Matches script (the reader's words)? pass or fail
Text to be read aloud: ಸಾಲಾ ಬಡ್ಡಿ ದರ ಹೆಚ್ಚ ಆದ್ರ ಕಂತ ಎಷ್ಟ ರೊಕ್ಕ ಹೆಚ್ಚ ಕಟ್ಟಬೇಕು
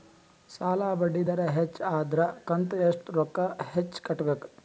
pass